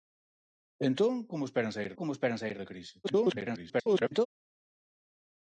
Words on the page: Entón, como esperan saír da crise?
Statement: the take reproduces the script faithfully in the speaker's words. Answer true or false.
false